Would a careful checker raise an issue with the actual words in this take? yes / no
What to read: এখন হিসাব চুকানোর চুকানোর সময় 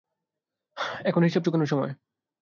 yes